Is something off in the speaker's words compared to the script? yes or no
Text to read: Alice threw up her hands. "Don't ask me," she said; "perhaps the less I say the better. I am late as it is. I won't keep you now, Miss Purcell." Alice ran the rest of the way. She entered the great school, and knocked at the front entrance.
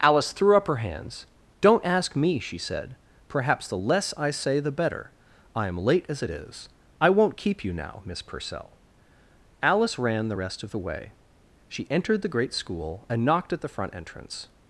no